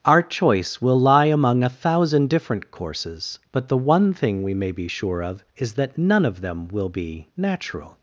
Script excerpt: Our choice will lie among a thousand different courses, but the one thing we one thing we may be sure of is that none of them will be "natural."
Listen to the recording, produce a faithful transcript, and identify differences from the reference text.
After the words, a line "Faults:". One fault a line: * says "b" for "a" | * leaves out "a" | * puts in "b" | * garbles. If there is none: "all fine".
Our choice will lie among a thousand different courses, but the one thing we may be sure of is that none of them will be "natural."
Faults:
* leaves out "one thing we"